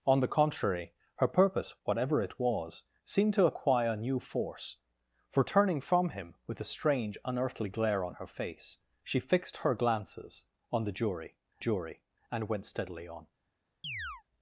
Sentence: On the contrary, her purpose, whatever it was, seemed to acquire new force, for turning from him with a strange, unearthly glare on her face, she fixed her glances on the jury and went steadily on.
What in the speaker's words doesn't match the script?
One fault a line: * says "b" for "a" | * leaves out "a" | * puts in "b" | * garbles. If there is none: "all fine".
* puts in "jury"